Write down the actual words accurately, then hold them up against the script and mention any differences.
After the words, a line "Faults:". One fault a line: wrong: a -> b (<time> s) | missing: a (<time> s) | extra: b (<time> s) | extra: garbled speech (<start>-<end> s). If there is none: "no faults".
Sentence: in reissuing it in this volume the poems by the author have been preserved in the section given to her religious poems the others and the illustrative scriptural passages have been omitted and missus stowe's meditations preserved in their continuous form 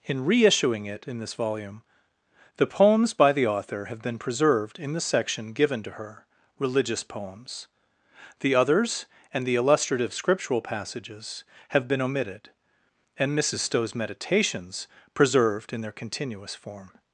in reissuing it in this volume the poems by the author have been preserved in the section given to her religious poems the others and the illustrative scriptural passages have been omitted and missus stowe's meditations preserved in their continuous form
Faults:
no faults